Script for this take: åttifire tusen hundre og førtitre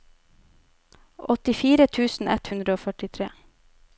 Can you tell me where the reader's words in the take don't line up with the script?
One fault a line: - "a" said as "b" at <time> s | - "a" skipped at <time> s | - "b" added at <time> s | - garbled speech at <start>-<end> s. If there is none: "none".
- "ett" added at 2.4 s